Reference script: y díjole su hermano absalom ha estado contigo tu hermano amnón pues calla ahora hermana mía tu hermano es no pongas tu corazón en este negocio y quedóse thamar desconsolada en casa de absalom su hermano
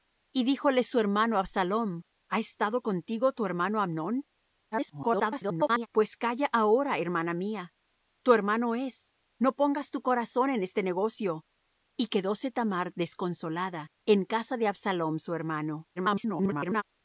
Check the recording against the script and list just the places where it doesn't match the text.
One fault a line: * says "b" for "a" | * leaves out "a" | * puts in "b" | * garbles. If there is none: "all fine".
* garbles
* garbles